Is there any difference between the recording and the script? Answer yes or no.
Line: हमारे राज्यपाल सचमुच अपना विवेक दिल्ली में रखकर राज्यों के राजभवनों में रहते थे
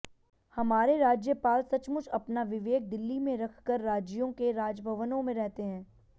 yes